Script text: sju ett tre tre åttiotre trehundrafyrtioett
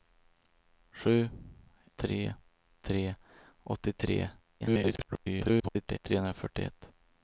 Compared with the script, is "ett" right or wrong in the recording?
wrong